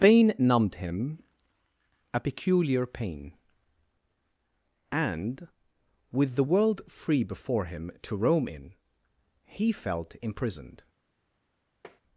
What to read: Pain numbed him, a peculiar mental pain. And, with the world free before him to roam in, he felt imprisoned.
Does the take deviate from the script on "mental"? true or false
true